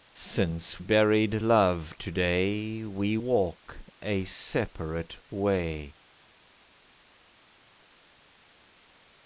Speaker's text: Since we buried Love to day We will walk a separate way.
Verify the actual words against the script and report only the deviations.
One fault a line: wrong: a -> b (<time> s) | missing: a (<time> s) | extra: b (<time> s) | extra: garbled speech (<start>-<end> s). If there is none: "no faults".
missing: we (0.8 s)
missing: will (3.2 s)